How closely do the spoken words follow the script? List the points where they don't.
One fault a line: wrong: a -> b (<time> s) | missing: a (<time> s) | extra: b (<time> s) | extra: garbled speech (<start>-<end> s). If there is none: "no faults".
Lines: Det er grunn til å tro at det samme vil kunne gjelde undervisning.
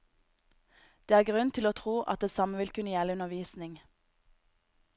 no faults